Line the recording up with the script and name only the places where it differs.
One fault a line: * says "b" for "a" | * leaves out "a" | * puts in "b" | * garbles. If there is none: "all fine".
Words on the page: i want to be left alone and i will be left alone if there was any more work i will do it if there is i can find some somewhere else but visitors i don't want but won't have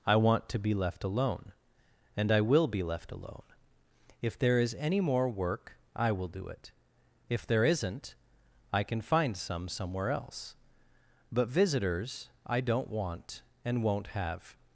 * says "is" for "was"
* says "isn't" for "is"
* says "and" for "but"